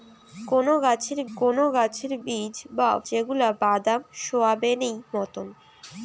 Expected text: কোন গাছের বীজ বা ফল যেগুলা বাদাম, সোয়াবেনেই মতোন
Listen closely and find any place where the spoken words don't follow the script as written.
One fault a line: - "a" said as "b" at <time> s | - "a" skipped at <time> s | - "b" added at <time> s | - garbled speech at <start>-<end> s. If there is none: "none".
- "কোন গাছের" added at 1.4 s
- "ফল" skipped at 2.9 s